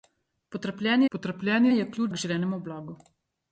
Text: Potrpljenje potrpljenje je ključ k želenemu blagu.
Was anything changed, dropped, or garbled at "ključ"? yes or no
no